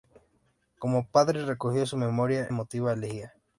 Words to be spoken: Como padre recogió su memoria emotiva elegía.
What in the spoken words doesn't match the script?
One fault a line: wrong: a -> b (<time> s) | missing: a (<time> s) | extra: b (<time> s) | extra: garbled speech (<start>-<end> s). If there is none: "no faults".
no faults